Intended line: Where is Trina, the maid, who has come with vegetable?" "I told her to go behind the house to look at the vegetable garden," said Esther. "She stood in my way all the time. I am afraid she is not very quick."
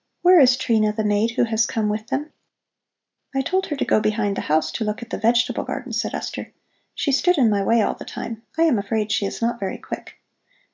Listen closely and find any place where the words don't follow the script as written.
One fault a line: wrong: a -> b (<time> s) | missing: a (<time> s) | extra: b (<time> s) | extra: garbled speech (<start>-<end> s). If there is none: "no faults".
wrong: vegetable -> them (2.1 s)